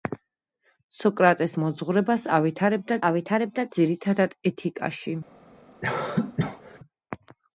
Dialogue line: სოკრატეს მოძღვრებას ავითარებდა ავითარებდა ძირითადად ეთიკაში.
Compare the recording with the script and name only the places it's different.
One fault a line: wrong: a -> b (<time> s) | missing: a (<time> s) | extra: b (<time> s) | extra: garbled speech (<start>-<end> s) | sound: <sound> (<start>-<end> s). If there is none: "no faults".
sound: cough (5.8-6.8 s)